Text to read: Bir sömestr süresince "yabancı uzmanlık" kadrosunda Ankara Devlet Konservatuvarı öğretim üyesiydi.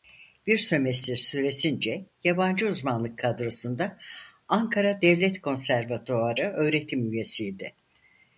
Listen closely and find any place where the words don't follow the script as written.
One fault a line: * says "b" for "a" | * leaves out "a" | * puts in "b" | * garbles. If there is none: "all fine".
all fine